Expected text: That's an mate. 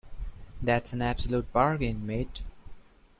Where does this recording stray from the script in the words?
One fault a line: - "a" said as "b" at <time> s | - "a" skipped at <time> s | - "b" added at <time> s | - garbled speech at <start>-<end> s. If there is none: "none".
- "absolute bargain" added at 1.0 s